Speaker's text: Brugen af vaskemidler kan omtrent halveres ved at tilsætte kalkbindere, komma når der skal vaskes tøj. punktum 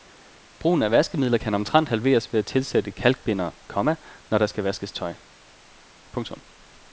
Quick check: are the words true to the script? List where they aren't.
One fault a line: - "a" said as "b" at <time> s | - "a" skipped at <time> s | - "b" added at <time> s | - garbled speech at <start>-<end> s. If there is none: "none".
none